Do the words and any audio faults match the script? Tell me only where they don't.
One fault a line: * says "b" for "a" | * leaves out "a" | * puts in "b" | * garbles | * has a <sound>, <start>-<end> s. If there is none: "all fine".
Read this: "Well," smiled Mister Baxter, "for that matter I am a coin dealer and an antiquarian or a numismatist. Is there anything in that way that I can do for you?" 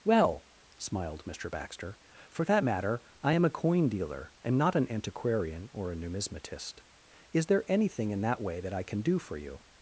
* puts in "not"